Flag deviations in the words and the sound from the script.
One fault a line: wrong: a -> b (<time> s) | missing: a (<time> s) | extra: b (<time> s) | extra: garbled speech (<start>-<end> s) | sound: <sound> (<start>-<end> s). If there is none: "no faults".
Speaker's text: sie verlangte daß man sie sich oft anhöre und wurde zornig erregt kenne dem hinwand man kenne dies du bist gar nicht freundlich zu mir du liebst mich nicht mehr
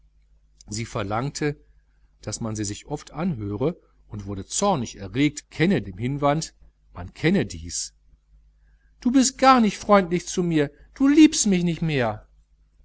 no faults